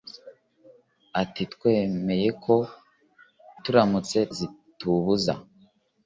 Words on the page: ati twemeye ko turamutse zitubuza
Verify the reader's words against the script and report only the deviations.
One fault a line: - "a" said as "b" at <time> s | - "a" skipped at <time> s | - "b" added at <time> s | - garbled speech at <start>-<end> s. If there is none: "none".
none